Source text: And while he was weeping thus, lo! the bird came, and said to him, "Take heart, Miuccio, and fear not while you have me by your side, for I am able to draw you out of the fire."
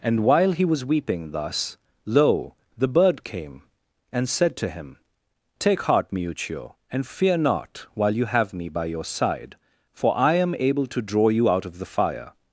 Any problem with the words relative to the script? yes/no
no